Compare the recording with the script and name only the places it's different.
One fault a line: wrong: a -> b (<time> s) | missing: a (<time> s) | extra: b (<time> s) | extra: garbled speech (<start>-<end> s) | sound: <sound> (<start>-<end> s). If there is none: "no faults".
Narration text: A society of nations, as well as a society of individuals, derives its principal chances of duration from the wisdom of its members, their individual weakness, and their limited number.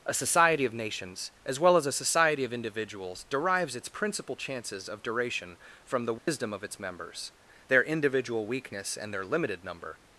sound: dropout (6.2-6.3 s)